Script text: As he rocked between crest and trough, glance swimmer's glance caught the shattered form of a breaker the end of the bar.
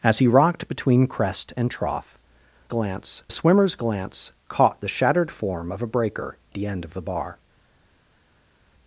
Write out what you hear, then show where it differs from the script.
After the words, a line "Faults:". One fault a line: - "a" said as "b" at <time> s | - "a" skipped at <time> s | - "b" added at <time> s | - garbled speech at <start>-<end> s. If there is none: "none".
As he rocked between crest and trough, glance swimmer's glance caught the shattered form of a breaker the end of the bar.
Faults:
none